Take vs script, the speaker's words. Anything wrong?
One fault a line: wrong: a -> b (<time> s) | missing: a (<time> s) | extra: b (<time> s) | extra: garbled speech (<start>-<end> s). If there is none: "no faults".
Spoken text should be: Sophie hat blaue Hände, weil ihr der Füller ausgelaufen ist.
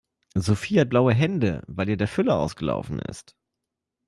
no faults